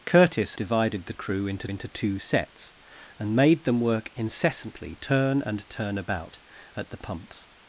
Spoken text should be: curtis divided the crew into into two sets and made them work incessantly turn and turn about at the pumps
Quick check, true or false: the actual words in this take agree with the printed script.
true